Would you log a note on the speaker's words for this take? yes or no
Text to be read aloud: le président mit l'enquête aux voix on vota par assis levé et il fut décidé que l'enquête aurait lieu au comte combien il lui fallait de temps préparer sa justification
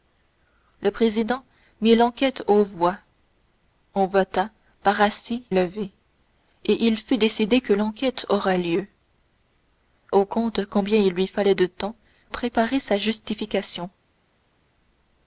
no